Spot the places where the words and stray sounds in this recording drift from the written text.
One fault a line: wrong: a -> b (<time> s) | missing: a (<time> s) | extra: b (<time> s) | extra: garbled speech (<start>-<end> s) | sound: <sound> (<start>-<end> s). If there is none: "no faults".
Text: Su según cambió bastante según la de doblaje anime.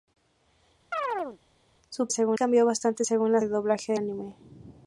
sound: chirp (0.9-1.4 s)